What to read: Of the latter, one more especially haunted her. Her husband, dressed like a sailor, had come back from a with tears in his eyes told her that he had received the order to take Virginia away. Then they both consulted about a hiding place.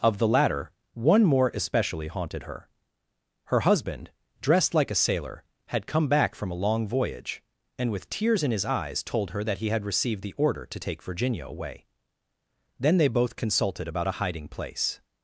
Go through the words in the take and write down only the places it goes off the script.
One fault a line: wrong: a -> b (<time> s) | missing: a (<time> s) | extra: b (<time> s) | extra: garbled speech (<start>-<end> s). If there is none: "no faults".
extra: long voyage and (6.6 s)